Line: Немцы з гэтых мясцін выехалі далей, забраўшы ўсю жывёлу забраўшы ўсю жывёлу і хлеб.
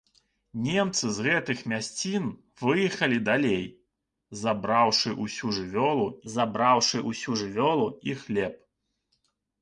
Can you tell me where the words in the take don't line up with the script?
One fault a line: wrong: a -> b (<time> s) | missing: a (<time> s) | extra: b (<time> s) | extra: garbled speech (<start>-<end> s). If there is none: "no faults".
no faults